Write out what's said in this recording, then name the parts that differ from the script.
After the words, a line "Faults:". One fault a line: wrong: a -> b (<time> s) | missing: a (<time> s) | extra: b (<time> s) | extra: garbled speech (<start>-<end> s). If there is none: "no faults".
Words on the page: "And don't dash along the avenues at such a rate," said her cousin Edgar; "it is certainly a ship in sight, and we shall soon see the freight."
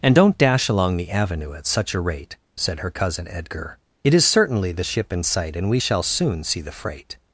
"And don't dash along the avenue at such a rate," said her cousin Edgar; "it is certainly the ship in sight, and we shall soon see the freight."
Faults:
wrong: avenues -> avenue (1.1 s)
wrong: a -> the (4.7 s)